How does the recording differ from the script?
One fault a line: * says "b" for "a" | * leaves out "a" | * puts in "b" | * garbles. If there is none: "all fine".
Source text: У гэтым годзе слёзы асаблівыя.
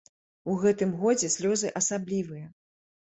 all fine